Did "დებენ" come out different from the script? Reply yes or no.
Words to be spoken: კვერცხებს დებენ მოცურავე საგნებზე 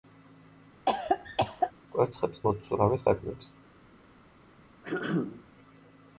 yes